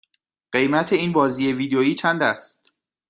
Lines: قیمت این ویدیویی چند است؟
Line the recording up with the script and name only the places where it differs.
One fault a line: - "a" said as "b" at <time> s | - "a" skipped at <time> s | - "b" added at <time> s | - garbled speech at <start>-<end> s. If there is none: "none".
- "بازی" added at 1.1 s